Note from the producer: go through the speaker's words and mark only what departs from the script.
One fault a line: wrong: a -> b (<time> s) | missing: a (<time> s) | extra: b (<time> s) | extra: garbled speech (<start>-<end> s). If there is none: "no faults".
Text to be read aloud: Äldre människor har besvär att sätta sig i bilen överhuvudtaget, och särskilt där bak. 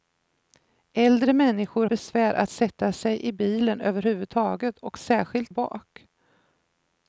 missing: har (1.9 s)
missing: där (5.5 s)